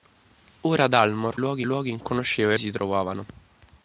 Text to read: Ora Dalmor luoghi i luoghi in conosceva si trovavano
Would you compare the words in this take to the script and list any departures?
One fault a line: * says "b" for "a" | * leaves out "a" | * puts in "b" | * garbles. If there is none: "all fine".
all fine